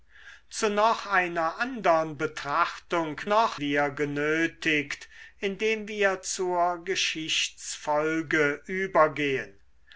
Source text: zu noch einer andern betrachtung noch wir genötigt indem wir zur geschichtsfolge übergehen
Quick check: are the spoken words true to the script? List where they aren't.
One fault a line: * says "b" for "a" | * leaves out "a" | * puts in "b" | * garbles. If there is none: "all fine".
all fine